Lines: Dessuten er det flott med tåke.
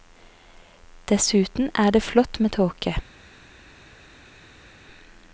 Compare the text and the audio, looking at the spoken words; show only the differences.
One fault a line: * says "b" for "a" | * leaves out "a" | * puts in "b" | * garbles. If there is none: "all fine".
all fine